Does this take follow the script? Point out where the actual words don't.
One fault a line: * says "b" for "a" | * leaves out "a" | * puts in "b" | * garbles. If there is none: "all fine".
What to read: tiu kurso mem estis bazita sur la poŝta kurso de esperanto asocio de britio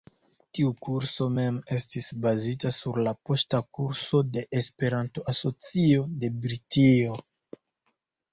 all fine